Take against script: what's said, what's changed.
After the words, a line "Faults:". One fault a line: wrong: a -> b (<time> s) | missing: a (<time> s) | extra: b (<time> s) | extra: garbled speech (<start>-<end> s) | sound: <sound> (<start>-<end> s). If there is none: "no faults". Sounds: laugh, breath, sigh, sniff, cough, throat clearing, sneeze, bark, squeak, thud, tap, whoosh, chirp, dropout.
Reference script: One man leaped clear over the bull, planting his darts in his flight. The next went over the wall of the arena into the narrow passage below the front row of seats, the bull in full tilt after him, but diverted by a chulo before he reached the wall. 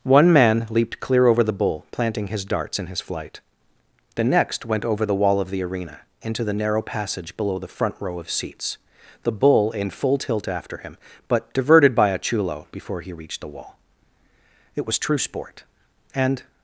One man leaped clear over the bull, planting his darts in his flight. The next went over the wall of the arena into the narrow passage below the front row of seats, the bull in full tilt after him, but diverted by a chulo before he reached the wall. It was true sport, and
Faults:
extra: It was true sport and (14.7 s)